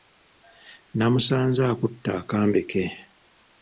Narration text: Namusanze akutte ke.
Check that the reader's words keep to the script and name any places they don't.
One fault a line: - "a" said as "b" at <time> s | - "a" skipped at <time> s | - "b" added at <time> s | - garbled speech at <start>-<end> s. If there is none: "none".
- "akambe" added at 2.2 s